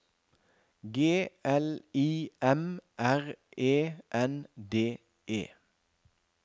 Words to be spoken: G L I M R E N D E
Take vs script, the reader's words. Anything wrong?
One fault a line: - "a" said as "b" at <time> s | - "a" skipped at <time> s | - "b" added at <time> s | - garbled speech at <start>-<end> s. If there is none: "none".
none